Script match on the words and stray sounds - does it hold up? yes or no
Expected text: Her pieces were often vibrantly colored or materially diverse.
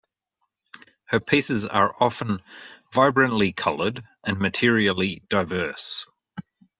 no